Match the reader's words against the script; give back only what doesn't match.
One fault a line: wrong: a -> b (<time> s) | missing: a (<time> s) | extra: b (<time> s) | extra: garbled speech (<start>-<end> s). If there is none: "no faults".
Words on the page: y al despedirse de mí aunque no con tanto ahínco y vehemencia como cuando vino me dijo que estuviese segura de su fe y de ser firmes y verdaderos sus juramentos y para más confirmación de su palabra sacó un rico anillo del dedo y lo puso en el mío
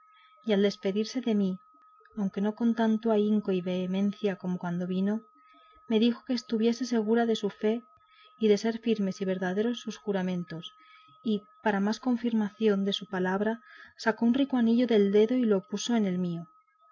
no faults